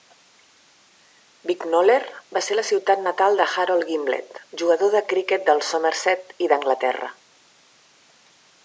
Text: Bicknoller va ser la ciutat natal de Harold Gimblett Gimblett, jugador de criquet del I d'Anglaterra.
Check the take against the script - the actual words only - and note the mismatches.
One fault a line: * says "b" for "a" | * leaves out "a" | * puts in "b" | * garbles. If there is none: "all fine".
* leaves out "Gimblett"
* puts in "Somerset"